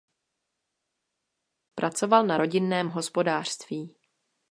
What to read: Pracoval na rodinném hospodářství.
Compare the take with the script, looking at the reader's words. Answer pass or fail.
pass